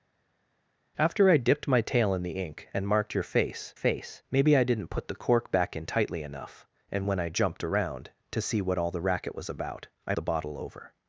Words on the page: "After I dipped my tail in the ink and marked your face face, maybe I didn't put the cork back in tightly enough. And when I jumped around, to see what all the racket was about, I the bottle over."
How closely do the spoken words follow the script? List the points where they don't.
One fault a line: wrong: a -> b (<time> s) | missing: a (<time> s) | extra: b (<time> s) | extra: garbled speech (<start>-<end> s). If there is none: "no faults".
no faults